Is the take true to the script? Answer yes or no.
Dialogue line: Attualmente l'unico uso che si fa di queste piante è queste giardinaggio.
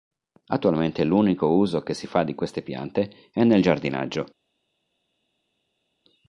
no